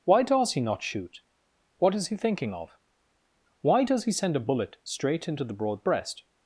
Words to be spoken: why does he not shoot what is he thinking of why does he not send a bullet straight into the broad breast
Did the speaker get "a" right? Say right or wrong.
right